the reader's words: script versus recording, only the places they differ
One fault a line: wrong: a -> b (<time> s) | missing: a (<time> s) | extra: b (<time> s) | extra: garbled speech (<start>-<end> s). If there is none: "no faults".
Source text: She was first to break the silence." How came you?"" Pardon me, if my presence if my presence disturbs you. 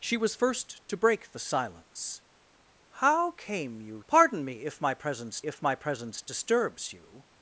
no faults